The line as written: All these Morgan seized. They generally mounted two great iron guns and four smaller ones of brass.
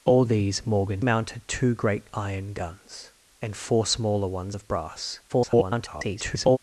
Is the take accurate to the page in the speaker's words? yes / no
no